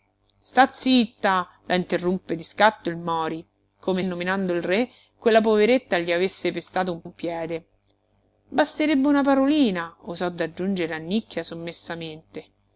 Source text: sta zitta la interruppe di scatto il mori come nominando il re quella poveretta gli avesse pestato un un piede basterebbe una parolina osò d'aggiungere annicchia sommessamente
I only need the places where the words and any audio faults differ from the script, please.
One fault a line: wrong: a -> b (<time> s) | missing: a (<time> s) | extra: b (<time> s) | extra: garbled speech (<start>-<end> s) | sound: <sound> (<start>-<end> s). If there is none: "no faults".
no faults